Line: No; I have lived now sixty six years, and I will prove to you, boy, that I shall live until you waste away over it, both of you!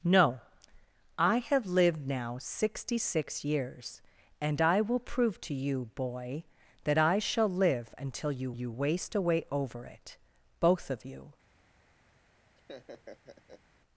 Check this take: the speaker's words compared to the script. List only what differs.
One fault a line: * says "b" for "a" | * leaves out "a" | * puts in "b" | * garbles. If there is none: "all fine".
* puts in "you"